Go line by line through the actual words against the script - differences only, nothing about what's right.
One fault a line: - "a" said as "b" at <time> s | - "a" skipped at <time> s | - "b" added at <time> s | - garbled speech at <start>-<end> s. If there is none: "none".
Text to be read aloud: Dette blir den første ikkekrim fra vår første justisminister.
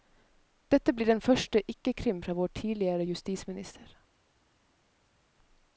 - "første" said as "tidligere" at 2.5 s